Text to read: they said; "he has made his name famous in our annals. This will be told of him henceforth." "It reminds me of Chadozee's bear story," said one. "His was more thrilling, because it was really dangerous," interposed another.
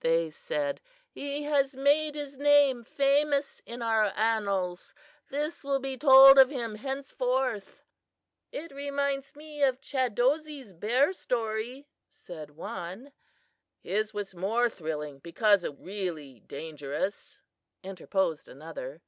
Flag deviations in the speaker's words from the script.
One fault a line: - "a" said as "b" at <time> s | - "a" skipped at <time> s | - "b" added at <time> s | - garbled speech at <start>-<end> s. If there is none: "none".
- "was" skipped at 15.8 s